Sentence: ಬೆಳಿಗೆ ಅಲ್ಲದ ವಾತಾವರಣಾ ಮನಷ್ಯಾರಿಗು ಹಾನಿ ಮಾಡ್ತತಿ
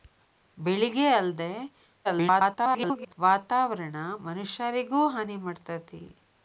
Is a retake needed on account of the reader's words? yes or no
yes